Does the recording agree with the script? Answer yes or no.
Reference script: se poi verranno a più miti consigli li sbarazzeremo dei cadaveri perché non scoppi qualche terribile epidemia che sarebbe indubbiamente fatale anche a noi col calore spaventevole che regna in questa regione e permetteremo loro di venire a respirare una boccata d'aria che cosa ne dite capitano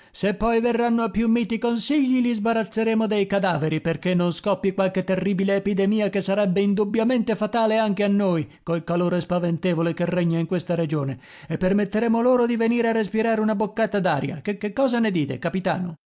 no